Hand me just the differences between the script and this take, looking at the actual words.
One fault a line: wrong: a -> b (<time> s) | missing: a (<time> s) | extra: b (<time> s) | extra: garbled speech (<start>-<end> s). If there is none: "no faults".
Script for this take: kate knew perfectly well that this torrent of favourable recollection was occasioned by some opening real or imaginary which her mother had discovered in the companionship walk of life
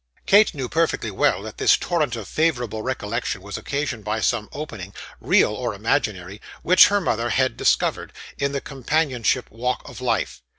no faults